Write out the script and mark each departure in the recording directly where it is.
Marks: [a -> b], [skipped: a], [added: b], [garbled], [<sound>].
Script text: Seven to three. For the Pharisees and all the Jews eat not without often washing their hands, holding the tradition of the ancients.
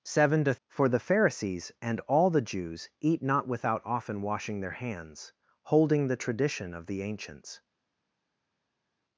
Seven to [skipped: three.] For the Pharisees and all the Jews eat not without often washing their hands, holding the tradition of the ancients.